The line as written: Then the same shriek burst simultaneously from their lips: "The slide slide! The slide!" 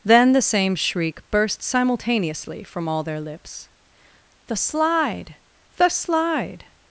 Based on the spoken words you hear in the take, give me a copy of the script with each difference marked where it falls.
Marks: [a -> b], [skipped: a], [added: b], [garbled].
Then the same shriek burst simultaneously from [added: all] their lips: "The slide [skipped: slide!] The slide!"